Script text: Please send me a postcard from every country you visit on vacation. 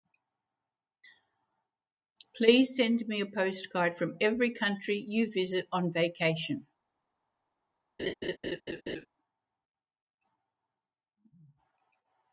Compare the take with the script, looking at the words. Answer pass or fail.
pass